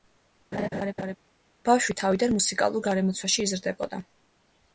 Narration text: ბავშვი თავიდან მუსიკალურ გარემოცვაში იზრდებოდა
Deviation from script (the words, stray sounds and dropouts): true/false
true